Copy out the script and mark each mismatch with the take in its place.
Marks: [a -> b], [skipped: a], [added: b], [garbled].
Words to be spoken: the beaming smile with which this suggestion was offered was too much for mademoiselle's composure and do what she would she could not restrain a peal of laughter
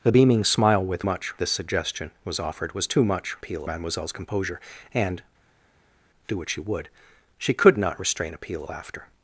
the beaming smile with [which -> much] this suggestion was offered was too much [for -> peal] mademoiselle's composure and do what she would she could not restrain a peal [skipped: of] laughter